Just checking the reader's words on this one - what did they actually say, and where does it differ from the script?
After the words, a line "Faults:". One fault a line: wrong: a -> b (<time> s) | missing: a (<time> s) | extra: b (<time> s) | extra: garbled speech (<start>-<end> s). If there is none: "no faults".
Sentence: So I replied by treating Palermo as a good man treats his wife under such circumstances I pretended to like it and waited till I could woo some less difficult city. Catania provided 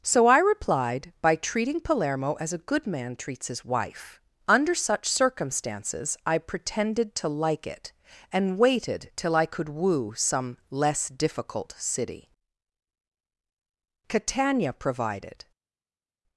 So I replied by treating Palermo as a good man treats his wife under such circumstances I pretended to like it and waited till I could woo some less difficult city. Catania provided
Faults:
no faults